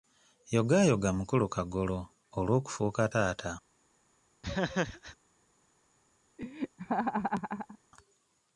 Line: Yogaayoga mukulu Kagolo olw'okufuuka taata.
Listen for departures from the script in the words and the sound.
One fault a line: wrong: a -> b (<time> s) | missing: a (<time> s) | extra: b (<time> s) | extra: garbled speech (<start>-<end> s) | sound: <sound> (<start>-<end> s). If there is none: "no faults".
sound: laugh (4.4-5.2 s)
sound: laugh (6.4-7.8 s)